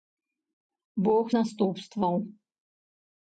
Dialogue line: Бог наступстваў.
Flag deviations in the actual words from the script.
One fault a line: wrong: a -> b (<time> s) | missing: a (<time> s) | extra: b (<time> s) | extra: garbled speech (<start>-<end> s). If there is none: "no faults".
no faults